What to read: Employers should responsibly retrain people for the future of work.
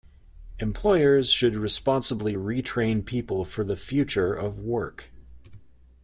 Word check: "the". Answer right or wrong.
right